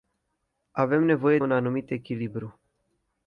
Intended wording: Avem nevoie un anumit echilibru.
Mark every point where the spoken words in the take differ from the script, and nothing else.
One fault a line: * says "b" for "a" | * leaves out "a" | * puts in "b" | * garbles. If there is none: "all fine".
all fine